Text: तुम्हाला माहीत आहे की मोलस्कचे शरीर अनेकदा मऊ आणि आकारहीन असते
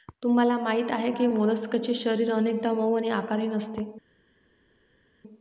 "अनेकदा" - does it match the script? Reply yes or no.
yes